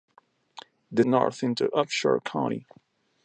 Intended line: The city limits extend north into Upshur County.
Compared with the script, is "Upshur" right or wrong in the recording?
right